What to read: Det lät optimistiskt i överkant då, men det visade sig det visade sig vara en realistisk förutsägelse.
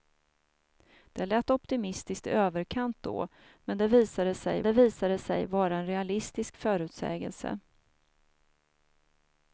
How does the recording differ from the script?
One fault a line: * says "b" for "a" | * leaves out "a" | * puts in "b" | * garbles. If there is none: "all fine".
all fine